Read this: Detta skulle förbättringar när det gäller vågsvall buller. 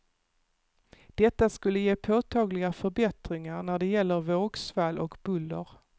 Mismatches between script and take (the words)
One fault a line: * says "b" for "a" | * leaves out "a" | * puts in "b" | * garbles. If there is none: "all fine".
* puts in "ge påtagliga"
* puts in "och"